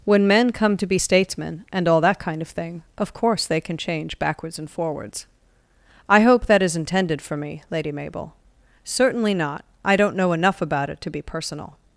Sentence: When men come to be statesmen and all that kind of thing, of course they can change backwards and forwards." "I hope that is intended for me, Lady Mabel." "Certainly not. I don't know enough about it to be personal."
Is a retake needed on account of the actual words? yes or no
no